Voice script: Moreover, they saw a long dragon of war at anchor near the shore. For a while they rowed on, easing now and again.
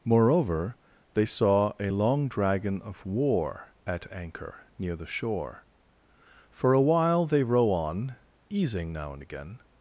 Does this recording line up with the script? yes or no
no